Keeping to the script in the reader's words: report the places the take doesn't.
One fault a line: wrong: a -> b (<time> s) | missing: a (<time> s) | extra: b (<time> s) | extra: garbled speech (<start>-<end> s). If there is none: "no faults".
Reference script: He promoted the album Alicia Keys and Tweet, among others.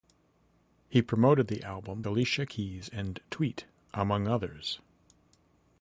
no faults